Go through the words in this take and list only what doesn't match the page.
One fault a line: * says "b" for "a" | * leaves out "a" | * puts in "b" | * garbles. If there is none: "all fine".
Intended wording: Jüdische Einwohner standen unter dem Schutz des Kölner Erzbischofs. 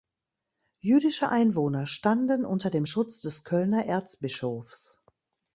all fine